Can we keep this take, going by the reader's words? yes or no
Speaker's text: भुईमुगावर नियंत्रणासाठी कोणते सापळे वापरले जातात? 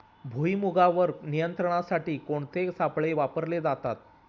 yes